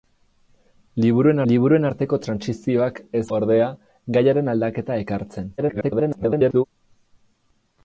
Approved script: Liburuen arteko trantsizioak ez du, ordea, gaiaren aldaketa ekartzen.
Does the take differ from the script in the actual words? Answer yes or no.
yes